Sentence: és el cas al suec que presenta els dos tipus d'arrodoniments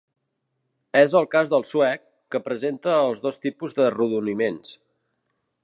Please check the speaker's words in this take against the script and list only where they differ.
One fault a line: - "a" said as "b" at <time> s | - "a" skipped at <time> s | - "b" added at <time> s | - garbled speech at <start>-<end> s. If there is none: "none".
- "al" said as "del" at 1.5 s